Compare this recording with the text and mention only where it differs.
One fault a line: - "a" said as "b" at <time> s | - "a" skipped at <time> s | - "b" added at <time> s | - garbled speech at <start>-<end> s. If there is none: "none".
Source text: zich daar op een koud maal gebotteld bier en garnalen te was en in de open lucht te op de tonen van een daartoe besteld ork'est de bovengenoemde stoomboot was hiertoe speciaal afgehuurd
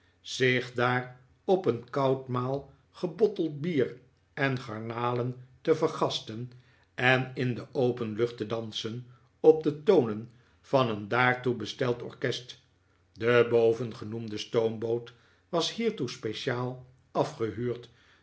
- "was" said as "vergasten" at 5.8 s
- "dansen" added at 8.4 s